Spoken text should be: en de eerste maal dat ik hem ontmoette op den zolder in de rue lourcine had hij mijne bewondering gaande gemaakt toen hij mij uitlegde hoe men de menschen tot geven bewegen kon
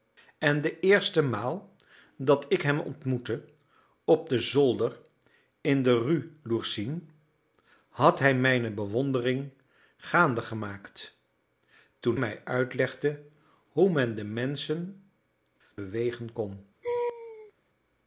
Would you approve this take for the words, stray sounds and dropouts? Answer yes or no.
no